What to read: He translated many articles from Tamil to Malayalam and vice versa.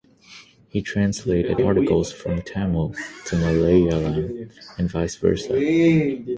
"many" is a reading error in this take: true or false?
true